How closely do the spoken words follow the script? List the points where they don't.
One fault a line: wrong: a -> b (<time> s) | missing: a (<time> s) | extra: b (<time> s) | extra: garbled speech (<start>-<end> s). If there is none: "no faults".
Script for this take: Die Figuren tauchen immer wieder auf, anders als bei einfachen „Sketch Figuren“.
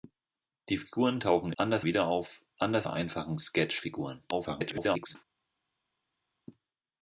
wrong: immer -> anders (1.6 s)
missing: als (2.9 s)
extra: garbled speech (4.3-5.2 s)